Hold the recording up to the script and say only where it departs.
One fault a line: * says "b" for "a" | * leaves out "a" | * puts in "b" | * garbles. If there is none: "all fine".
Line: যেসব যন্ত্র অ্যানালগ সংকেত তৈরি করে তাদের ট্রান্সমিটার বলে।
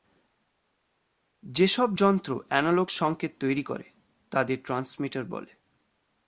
all fine